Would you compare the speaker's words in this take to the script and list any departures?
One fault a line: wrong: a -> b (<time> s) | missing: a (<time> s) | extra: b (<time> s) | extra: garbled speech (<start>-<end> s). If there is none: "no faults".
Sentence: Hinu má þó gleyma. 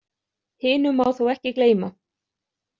extra: ekki (1.3 s)